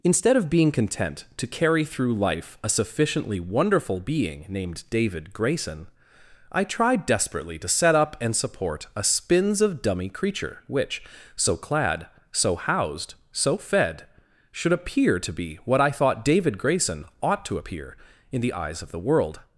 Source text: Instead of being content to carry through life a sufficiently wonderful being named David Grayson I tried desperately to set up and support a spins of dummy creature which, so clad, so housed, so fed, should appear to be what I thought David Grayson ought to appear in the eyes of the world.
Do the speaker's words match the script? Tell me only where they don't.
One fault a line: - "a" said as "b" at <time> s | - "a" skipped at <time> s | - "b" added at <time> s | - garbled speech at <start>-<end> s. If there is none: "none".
none